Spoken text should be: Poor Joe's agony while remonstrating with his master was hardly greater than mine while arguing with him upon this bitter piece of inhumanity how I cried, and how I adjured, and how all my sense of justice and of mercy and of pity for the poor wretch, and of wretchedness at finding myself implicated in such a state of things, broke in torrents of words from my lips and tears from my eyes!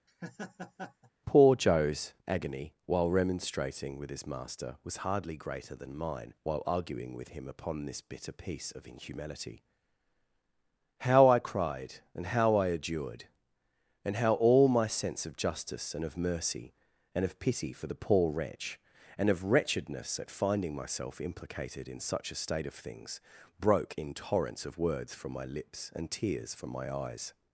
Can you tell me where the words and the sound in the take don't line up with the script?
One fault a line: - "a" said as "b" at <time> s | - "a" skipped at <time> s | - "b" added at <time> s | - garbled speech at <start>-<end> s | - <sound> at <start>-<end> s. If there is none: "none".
- laugh at 0.1-1.1 s